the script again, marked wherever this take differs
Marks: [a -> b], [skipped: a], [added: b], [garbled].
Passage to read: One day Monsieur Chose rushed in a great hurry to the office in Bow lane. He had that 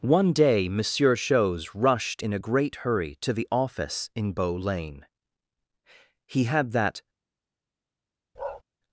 One day Monsieur Chose rushed in a great hurry to the office in Bow lane. He had that